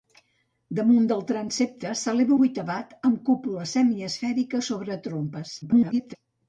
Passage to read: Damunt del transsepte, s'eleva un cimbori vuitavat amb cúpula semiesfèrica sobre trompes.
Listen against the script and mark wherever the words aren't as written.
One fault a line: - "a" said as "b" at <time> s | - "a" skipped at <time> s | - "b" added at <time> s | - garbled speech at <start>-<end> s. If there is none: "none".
- "un cimbori" skipped at 2.4 s
- garbled speech at 5.6-6.2 s